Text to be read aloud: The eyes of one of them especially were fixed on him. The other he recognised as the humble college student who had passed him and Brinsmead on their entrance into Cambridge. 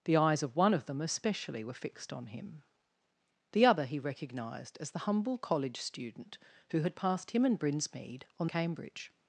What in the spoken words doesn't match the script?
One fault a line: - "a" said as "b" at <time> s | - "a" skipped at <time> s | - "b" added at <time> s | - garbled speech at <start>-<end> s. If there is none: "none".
- "their entrance into" skipped at 8.5 s